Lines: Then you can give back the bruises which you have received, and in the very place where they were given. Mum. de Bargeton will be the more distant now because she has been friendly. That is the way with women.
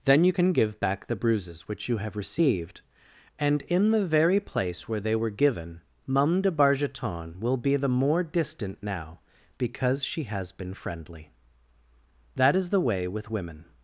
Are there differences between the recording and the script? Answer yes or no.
no